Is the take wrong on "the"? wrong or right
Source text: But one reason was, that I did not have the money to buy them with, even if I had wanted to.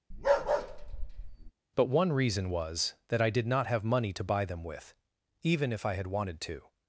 wrong